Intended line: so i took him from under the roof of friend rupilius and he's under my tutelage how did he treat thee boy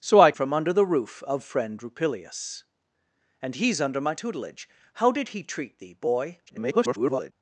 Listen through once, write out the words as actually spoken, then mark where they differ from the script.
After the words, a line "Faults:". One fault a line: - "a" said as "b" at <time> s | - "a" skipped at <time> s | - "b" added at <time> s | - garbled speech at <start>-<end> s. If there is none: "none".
so i from under the roof of friend rupilius and he's under my tutelage how did he treat thee boy [garbled]
Faults:
- "took him" skipped at 0.3 s
- garbled speech at 6.5-7.3 s